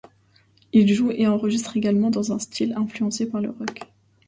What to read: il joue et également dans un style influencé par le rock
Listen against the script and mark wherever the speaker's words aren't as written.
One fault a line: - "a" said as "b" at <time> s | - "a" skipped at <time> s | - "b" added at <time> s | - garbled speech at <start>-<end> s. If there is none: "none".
- "enregistre" added at 1.3 s